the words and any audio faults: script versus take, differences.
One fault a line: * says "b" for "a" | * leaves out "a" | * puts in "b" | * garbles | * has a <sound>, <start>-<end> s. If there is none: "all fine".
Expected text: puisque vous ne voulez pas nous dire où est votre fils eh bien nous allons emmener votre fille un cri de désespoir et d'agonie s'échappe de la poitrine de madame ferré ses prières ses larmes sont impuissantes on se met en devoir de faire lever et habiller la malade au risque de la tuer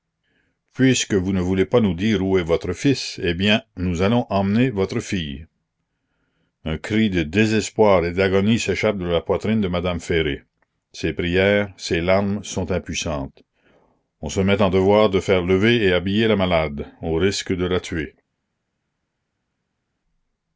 all fine